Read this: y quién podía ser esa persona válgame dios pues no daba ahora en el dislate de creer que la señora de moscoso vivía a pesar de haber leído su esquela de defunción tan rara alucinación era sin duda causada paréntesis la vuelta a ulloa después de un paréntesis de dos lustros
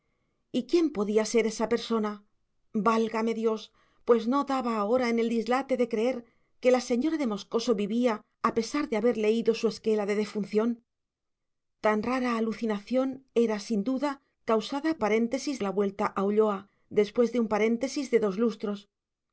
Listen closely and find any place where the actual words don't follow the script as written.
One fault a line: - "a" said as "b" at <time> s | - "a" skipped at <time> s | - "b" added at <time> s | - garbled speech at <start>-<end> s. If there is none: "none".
none